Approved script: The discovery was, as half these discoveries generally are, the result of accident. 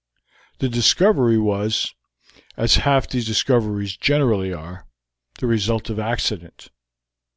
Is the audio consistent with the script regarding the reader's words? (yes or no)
yes